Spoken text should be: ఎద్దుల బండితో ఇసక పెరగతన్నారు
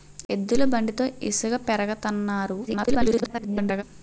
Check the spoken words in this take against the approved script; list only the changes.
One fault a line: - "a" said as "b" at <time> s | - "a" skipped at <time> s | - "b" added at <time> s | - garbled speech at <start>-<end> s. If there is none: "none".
- garbled speech at 2.7-3.8 s